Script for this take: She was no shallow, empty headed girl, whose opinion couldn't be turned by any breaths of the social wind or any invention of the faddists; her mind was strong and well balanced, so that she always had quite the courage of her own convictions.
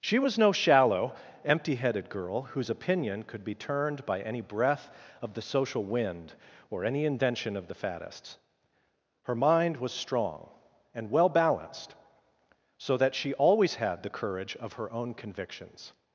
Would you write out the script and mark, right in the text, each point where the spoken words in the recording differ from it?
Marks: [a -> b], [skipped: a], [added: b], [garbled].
She was no shallow, empty headed girl, whose opinion [couldn't -> could] be turned by any [breaths -> breath] of the social wind or any invention of the faddists; her mind was strong and well balanced, so that she always had [skipped: quite] the courage of her own convictions.